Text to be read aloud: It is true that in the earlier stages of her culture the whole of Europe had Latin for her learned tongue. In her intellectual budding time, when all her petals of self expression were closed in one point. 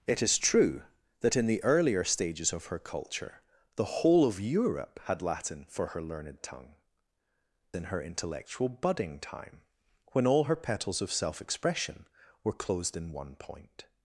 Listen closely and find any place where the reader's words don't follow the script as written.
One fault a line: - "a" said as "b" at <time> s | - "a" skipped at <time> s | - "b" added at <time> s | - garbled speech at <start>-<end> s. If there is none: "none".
none